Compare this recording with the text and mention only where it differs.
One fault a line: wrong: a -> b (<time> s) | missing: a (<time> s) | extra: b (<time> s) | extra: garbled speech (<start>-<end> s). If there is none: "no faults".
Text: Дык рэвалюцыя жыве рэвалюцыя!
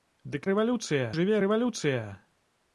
no faults